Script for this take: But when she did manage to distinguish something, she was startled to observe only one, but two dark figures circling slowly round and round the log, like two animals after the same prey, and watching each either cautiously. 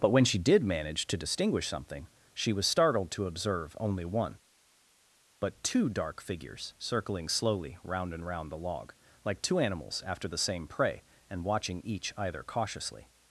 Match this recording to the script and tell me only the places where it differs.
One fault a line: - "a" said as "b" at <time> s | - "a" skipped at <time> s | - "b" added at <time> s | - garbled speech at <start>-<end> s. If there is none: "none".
none